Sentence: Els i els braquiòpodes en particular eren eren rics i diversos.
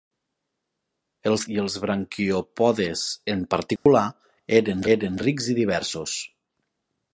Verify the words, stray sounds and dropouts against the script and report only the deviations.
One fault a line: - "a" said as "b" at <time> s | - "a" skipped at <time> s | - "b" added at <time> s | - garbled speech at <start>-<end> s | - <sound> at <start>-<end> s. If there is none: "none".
- dropout at 3.8-3.9 s